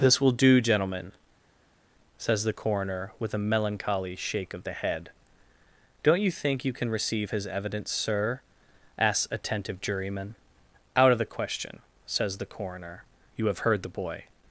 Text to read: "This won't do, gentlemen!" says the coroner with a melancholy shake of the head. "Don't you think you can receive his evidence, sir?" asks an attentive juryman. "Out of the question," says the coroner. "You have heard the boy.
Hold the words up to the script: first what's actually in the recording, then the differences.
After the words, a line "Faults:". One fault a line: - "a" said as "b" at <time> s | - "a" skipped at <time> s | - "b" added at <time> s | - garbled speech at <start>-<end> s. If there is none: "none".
"This will do, gentlemen!" says the coroner with a melancholy shake of the head. "Don't you think you can receive his evidence, sir?" asks attentive juryman. "Out of the question," says the coroner. "You have heard the boy.
Faults:
- "won't" said as "will" at 0.2 s
- "an" skipped at 9.3 s